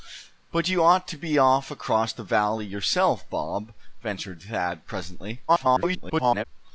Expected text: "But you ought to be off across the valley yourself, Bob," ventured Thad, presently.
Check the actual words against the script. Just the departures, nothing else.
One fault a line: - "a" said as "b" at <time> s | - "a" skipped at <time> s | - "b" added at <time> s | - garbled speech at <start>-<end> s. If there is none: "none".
- garbled speech at 5.5-6.5 s